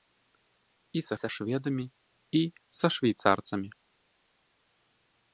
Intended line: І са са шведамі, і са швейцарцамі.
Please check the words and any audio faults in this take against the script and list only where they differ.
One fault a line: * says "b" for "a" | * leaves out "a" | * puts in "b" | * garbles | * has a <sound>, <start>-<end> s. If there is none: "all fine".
all fine